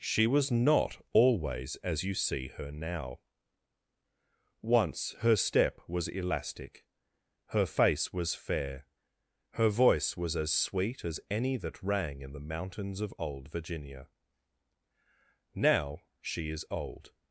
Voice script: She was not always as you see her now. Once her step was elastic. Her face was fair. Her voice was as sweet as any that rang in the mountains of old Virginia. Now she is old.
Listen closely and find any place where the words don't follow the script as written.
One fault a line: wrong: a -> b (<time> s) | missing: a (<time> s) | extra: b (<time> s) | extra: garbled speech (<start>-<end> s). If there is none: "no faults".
no faults